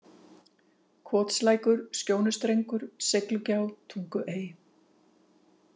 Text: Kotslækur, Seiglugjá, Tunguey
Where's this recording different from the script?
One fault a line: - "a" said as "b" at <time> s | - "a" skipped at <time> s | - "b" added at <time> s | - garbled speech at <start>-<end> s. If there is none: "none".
- "Skjónustrengur" added at 2.0 s